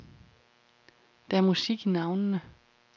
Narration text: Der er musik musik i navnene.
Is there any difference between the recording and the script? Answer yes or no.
yes